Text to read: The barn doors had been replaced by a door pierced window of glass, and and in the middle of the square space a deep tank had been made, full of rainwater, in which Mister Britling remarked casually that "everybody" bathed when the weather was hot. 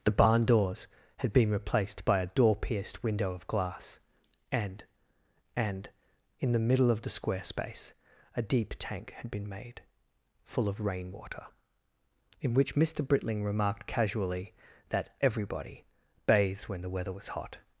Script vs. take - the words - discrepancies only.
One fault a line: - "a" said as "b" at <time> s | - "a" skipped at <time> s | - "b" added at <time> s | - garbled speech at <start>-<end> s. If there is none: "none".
none